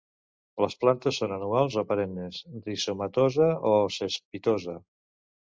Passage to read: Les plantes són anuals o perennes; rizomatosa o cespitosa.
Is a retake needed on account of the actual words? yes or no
no